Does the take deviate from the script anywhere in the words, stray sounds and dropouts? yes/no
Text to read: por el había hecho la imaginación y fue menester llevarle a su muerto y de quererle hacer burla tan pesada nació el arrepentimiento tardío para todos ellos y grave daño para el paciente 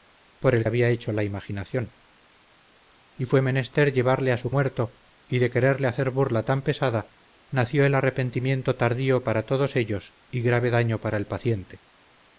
no